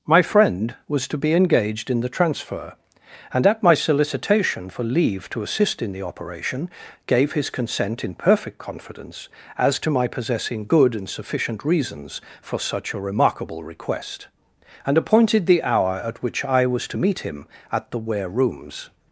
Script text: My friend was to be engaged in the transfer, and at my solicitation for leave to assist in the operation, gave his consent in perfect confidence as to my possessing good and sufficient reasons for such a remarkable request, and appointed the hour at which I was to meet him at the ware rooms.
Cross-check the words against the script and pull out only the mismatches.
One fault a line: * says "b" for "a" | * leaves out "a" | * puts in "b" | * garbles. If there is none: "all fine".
all fine